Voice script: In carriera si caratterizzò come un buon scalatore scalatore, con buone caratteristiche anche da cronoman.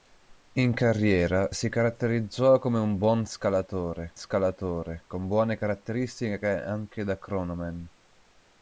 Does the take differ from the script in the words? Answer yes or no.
no